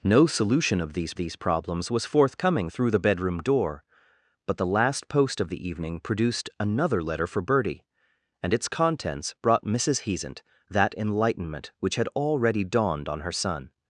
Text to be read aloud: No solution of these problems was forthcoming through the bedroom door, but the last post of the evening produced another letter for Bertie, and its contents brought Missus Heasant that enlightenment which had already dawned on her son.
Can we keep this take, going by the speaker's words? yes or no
no